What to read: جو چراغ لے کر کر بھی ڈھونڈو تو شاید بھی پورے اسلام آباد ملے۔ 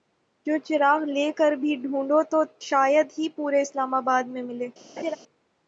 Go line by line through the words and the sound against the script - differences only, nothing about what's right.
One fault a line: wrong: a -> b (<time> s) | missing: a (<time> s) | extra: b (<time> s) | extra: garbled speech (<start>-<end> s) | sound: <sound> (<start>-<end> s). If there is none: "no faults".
missing: کر (1.5 s)
wrong: بھی -> ہی (3.2 s)
extra: میں (4.3 s)
sound: laugh (5.0-5.2 s)